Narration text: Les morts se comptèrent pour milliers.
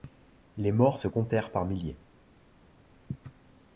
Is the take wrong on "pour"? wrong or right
wrong